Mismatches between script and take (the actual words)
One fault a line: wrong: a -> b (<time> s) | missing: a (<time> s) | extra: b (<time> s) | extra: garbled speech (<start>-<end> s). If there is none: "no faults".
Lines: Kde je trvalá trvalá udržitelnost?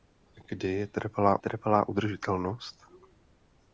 no faults